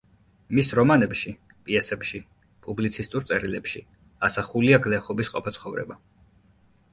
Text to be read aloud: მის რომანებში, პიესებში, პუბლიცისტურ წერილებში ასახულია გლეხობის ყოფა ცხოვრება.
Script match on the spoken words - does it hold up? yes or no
yes